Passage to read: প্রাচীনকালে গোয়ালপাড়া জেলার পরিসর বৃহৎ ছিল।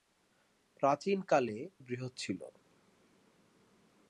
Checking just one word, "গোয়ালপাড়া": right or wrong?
wrong